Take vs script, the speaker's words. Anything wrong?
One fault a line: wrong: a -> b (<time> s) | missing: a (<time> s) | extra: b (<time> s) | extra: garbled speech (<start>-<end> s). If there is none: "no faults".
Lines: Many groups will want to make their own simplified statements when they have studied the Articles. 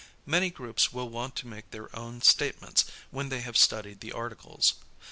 missing: simplified (2.2 s)